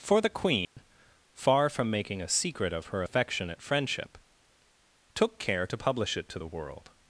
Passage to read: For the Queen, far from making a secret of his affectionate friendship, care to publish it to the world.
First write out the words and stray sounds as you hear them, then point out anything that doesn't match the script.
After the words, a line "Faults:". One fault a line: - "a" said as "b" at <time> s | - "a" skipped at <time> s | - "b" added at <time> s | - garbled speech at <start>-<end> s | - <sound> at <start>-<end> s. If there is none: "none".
For the Queen, far from making a secret of her affectionate friendship, took care to publish it to the world.
Faults:
- dropout at 0.6-0.8 s
- "his" said as "her" at 2.9 s
- "took" added at 5.1 s